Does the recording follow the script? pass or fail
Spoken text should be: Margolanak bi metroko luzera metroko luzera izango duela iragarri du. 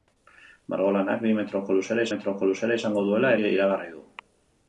pass